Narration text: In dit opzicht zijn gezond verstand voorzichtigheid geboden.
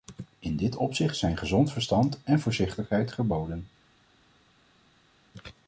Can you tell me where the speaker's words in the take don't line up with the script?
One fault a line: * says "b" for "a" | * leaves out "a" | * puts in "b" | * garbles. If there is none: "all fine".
* puts in "en"